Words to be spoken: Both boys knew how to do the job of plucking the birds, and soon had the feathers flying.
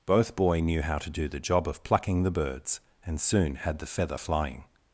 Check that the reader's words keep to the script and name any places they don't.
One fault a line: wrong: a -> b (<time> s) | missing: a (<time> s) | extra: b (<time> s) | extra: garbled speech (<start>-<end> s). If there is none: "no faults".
wrong: boys -> boy (0.3 s)
wrong: feathers -> feather (3.9 s)